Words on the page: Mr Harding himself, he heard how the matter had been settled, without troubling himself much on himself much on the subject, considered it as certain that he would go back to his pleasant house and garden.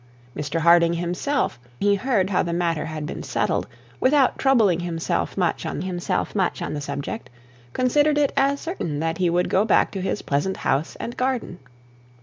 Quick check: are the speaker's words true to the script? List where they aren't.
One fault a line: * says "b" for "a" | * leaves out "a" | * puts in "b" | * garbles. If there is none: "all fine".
all fine